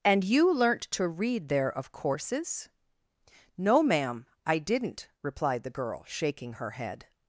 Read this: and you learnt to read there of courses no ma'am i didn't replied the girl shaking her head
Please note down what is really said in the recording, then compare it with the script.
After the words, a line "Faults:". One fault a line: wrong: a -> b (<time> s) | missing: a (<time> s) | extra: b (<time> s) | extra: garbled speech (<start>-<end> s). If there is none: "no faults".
and you learnt to read there of courses no ma'am i didn't replied the girl shaking her head
Faults:
no faults